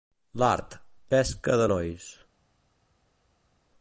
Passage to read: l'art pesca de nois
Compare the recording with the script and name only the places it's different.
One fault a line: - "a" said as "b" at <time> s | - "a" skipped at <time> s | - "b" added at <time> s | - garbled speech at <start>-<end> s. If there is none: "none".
none